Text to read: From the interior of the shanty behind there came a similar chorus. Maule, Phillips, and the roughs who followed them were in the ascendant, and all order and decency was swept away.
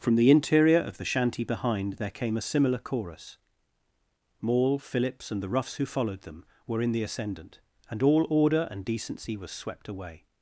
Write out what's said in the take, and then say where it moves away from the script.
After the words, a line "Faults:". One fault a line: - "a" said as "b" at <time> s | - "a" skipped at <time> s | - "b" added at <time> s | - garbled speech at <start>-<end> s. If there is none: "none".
From the interior of the shanty behind there came a similar chorus. Maule, Phillips, and the roughs who followed them were in the ascendant, and all order and decency was swept away.
Faults:
none